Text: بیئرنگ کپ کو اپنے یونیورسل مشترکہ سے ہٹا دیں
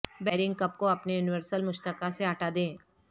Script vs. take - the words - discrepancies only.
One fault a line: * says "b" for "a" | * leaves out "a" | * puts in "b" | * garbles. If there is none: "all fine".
all fine